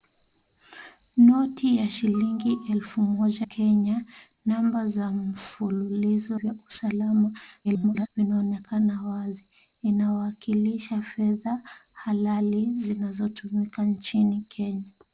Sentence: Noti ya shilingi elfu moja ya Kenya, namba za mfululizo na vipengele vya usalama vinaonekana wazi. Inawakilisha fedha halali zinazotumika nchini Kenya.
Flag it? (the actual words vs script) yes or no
yes